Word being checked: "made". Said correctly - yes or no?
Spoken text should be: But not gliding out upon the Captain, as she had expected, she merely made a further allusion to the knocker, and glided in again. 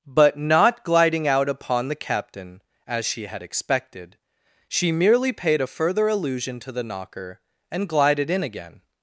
no